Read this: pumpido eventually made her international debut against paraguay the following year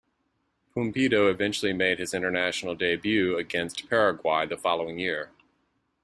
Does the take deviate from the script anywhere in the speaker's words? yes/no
yes